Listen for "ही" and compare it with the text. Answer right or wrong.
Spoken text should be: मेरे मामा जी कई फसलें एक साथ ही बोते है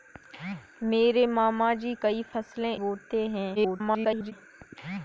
wrong